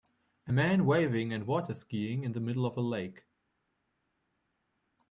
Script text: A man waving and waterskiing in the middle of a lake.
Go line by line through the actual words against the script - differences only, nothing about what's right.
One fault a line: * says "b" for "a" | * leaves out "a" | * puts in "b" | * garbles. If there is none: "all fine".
all fine